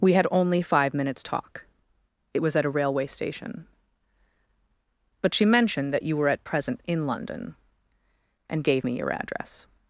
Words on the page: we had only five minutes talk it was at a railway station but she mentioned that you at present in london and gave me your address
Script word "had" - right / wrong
right